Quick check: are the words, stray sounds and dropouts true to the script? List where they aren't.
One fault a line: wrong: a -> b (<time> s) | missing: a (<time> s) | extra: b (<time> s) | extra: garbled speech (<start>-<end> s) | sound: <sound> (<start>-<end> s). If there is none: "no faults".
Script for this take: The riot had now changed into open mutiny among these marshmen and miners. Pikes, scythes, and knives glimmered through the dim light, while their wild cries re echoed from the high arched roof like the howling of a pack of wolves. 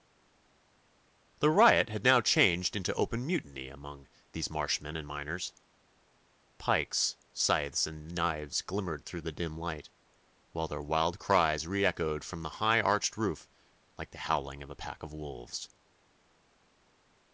no faults